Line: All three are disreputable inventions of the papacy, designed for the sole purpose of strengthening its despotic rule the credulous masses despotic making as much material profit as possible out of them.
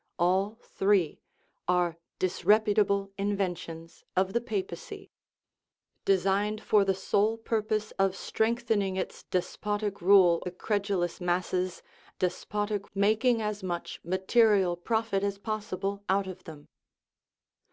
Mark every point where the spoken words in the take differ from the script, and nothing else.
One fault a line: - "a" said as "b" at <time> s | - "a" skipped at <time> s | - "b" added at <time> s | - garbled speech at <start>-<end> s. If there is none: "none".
none